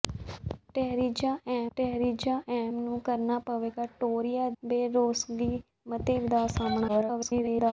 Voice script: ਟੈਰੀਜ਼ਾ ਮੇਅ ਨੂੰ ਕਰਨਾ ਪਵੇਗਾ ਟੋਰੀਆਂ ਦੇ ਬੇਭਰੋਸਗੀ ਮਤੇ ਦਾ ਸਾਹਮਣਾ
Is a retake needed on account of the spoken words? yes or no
yes